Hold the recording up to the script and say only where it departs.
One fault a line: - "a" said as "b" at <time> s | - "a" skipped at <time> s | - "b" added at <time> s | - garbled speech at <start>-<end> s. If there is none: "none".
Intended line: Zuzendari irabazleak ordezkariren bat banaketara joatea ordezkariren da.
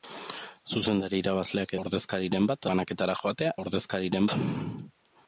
none